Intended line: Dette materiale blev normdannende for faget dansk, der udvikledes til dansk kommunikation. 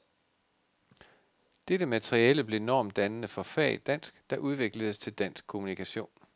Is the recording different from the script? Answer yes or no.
no